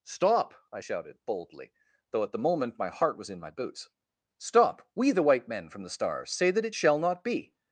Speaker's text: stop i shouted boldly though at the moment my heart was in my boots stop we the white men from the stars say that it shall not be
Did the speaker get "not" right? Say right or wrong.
right